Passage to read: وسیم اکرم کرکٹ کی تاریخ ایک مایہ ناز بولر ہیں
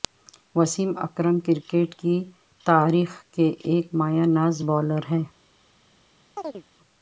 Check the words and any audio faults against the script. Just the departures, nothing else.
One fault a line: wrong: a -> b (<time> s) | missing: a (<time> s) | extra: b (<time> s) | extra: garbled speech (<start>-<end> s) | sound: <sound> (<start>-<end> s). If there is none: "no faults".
extra: کے (3.3 s)
sound: chirp (6.4-6.6 s)